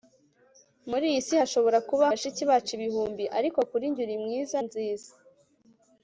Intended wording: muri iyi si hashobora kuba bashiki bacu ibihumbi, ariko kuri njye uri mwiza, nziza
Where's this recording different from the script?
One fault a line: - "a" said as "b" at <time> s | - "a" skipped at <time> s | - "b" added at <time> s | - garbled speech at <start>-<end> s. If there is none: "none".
none